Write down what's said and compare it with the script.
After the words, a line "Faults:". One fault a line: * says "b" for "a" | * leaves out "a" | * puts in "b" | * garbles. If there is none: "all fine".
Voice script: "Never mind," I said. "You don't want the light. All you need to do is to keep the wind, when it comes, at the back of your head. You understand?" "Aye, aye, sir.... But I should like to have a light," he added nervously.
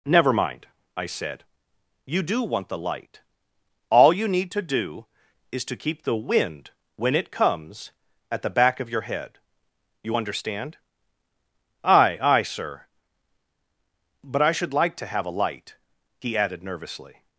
"Never mind," I said. "You do want the light. All you need to do is to keep the wind, when it comes, at the back of your head. You understand?" "Aye, aye, sir.... But I should like to have a light," he added nervously.
Faults:
* says "do" for "don't"